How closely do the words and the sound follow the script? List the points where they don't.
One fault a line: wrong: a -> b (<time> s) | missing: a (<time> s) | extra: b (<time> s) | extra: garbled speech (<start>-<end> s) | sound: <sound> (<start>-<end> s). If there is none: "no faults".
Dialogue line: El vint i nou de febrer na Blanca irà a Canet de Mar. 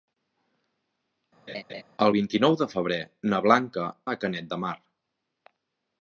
sound: laugh (1.5-1.8 s)
missing: irà (3.9 s)